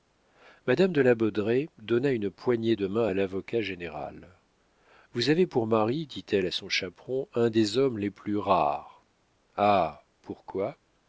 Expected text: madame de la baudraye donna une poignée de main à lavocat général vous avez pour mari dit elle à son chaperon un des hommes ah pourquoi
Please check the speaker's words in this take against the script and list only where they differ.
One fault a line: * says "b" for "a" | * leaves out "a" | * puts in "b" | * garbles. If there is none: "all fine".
* puts in "les plus rares"